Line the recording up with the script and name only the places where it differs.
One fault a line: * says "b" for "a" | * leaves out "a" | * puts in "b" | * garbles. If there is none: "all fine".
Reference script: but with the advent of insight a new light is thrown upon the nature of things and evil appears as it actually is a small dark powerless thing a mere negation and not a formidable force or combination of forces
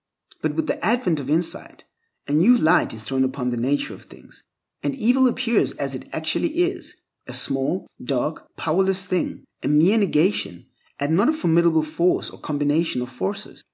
all fine